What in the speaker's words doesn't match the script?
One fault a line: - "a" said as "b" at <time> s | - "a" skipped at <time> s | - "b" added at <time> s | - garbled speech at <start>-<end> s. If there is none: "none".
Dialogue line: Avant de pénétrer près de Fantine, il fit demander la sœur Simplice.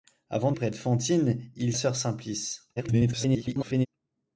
- "de pénétrer" skipped at 0.5 s
- "fit demander la" skipped at 1.7 s
- garbled speech at 2.8-3.9 s